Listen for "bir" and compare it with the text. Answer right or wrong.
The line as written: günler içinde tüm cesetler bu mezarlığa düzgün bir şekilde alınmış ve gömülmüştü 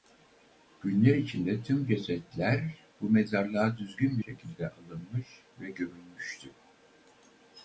wrong